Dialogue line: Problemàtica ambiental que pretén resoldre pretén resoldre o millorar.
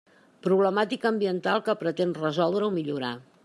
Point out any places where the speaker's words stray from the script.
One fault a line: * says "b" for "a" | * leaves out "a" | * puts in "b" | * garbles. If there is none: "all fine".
* leaves out "pretén resoldre"